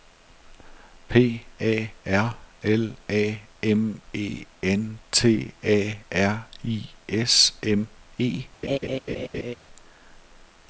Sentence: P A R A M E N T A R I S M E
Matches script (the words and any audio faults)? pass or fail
fail